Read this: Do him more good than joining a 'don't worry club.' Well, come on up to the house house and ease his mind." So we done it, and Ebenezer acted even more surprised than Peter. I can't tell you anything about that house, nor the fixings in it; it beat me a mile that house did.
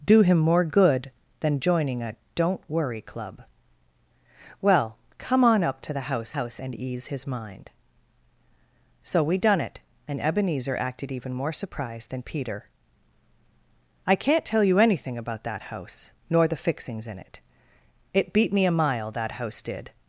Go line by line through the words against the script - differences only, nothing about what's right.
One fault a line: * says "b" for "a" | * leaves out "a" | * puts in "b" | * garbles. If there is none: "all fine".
all fine